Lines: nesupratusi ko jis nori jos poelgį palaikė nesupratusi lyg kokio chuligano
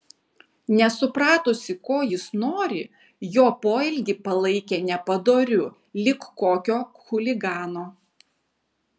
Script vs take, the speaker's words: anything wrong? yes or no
yes